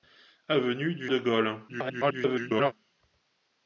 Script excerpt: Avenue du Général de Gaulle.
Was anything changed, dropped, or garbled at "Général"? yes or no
yes